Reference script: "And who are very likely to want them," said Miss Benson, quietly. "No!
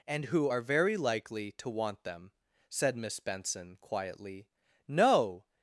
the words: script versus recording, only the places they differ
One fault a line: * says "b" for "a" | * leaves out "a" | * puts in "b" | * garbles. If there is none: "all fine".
all fine